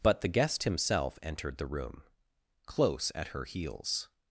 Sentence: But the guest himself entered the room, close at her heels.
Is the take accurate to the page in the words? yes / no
yes